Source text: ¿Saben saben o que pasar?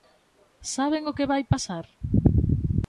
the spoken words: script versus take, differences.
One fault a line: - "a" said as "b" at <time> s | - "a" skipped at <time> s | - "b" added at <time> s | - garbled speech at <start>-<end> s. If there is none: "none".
- "saben" skipped at 1.0 s
- "vai" added at 1.3 s